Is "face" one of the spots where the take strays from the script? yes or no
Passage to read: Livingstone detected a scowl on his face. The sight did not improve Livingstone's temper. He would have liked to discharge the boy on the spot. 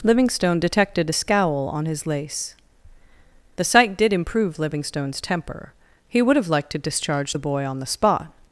yes